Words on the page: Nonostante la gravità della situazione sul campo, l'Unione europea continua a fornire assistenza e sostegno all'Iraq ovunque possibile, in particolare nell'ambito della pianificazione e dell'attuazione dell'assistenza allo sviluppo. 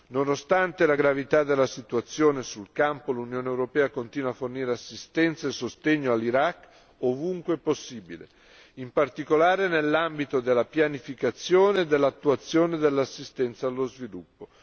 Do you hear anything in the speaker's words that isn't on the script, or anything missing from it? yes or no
no